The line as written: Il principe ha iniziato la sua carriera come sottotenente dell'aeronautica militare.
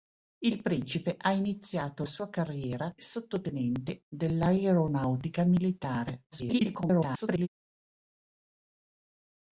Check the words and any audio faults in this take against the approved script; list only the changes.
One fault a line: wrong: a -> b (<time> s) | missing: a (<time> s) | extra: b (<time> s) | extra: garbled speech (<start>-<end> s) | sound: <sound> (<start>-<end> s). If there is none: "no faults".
missing: la (2.0 s)
missing: come (2.9 s)
extra: garbled speech (6.3-7.5 s)